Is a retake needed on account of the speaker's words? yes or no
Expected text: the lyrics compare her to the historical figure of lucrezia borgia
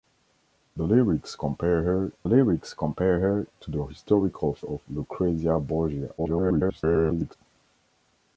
yes